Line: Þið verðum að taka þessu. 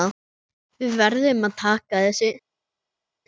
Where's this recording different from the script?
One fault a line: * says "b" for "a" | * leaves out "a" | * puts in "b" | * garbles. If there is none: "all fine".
* says "Við" for "Þið"